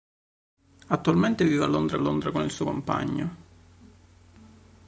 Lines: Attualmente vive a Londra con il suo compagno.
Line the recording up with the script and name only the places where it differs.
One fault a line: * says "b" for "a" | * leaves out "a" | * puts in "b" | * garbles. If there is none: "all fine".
* puts in "Londra"